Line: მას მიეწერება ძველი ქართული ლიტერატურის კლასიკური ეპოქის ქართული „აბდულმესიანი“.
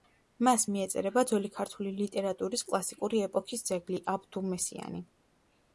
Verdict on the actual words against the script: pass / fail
fail